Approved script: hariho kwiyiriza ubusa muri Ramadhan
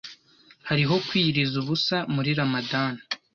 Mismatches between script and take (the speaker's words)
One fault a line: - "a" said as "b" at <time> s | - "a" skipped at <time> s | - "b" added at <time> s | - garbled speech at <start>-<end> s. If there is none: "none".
none